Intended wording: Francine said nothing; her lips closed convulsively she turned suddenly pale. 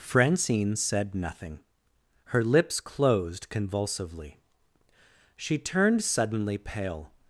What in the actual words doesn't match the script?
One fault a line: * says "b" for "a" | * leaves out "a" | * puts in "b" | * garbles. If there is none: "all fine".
all fine